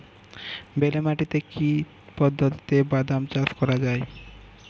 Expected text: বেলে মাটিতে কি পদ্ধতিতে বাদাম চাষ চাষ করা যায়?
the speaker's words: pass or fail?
fail